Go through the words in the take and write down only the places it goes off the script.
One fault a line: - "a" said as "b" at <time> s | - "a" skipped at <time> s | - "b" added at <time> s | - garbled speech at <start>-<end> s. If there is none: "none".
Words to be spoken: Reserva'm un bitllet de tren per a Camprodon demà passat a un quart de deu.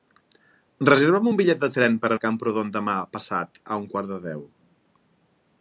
none